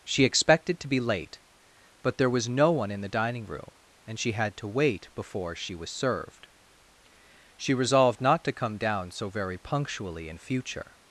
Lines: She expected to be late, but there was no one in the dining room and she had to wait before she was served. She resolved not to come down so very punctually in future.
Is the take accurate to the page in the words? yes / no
yes